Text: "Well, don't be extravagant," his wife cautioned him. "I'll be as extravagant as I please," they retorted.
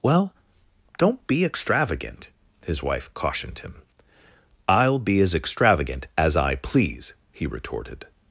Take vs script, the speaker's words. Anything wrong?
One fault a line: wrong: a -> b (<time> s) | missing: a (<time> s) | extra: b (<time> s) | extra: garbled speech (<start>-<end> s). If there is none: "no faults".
wrong: they -> he (7.3 s)